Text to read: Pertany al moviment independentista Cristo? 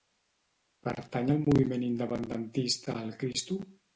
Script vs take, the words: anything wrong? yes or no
yes